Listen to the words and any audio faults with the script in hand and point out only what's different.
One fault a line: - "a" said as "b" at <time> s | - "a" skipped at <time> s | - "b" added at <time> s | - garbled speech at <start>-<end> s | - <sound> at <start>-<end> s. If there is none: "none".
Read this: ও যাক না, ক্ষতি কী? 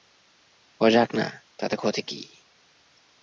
- "তাতে" added at 1.6 s